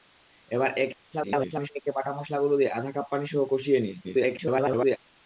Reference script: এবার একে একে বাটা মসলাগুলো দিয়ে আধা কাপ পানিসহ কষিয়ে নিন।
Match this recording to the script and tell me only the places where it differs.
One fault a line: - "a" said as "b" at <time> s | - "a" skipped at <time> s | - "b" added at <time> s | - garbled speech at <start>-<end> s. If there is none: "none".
- garbled speech at 1.1-1.7 s
- garbled speech at 4.0-5.0 s